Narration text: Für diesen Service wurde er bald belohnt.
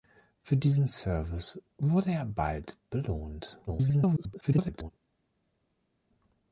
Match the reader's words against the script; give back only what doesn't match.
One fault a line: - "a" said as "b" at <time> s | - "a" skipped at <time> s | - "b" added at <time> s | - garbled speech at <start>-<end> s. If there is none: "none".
- garbled speech at 3.7-4.9 s